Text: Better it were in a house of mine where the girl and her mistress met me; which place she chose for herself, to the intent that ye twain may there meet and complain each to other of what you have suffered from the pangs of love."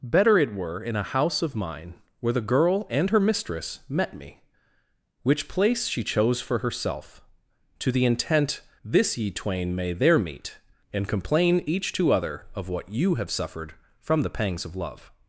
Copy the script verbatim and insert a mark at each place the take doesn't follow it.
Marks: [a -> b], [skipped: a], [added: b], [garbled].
Better it were in a house of mine where the girl and her mistress met me; which place she chose for herself, to the intent [that -> this] ye twain may there meet and complain each to other of what you have suffered from the pangs of love."